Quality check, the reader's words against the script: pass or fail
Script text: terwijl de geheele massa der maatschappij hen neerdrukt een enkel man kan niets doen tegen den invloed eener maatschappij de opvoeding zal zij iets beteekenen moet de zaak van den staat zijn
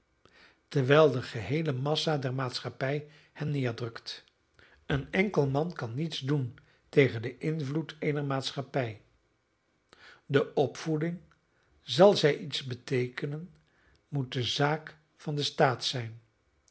pass